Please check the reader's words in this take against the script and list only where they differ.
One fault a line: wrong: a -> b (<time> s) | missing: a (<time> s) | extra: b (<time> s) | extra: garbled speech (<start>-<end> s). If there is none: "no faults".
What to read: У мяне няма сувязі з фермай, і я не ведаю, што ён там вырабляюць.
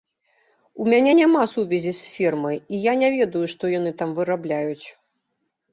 wrong: ён -> яны (3.8 s)